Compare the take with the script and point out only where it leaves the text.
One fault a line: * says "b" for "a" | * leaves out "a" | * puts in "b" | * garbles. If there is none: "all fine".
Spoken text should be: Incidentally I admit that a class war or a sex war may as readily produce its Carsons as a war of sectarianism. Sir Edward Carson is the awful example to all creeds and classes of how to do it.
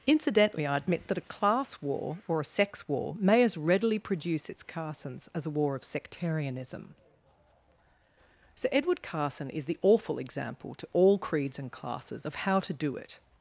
all fine